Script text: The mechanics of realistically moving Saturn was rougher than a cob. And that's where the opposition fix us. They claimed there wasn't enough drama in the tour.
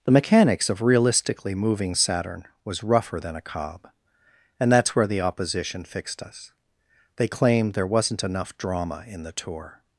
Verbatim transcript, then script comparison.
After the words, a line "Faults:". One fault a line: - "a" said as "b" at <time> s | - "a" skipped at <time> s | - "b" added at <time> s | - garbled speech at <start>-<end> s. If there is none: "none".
The mechanics of realistically moving Saturn was rougher than a cob. And that's where the opposition fixed us. They claimed there wasn't enough drama in the tour.
Faults:
- "fix" said as "fixed" at 5.8 s